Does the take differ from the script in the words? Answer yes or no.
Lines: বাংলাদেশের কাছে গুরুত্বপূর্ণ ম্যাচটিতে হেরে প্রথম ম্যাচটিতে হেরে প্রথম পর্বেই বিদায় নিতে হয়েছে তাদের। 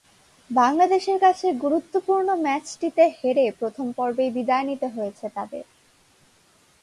yes